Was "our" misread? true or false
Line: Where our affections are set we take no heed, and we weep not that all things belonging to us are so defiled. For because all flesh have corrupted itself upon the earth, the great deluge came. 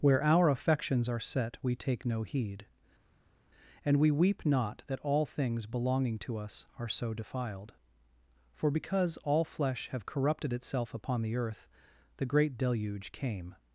false